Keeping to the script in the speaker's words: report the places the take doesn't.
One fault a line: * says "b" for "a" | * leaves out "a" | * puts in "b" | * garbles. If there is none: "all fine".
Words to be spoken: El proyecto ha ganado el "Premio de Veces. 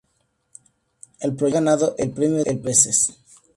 all fine